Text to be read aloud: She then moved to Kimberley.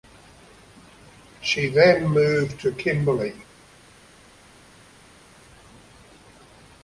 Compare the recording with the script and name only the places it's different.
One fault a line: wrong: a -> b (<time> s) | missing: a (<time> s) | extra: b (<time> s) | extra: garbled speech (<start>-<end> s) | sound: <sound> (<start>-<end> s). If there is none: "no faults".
no faults